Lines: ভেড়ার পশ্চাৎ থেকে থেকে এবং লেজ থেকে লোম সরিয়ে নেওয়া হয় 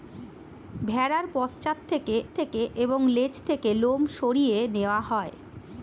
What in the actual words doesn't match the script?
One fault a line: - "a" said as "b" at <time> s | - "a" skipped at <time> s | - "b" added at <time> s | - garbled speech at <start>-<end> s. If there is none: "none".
none